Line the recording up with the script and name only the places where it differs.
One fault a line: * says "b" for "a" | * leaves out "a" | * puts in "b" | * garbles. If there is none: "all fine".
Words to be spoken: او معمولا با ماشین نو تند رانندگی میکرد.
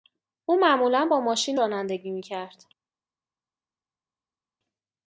* leaves out "نو تند"